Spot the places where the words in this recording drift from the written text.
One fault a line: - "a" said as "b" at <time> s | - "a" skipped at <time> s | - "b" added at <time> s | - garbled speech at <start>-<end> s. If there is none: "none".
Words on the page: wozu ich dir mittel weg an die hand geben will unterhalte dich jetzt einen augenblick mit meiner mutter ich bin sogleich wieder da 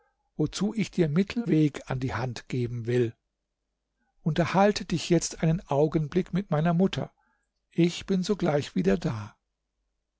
none